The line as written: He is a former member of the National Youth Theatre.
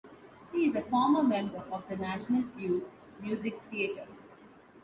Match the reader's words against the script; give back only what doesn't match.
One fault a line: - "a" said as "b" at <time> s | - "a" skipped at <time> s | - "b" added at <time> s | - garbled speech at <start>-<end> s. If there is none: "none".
- "Music" added at 3.2 s